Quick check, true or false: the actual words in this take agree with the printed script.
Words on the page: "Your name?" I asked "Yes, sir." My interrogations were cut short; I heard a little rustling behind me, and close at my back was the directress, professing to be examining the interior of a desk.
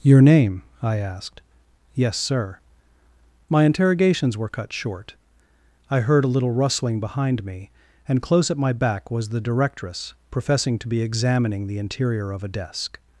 true